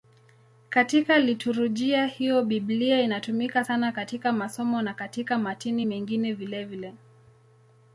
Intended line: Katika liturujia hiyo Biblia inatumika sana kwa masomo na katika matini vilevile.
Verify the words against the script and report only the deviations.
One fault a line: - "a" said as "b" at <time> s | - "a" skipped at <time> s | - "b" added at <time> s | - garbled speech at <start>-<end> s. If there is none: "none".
- "kwa" said as "katika" at 3.9 s
- "mengine" added at 5.8 s